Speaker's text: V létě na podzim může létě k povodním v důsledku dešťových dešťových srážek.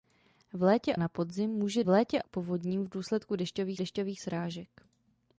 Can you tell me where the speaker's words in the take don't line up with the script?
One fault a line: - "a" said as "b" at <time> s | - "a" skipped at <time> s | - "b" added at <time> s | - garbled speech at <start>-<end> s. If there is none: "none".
none